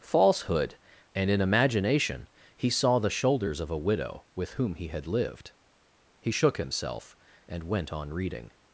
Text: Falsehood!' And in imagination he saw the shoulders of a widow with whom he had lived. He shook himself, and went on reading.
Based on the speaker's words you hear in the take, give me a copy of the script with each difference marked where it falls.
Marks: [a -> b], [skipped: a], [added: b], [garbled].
Falsehood!' And in imagination he saw the shoulders of a widow with whom he had lived. He shook himself, and went on reading.